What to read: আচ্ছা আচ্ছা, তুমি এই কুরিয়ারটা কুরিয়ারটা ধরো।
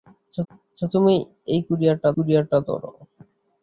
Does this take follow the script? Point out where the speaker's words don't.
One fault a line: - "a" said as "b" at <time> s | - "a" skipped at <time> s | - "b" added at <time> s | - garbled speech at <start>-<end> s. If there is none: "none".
none